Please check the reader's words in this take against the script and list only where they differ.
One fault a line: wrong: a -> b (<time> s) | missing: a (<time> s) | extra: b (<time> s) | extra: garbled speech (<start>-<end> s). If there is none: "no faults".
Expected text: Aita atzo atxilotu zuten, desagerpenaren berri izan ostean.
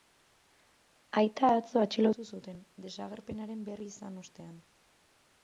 no faults